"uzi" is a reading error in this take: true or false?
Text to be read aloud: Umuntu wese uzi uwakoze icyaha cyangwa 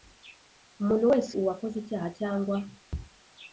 true